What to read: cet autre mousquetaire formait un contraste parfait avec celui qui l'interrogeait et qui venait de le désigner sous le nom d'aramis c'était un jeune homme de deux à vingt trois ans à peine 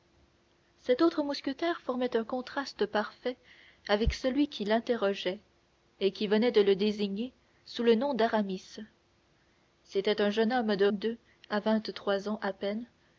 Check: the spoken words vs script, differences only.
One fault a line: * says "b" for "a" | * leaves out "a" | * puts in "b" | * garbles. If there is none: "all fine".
all fine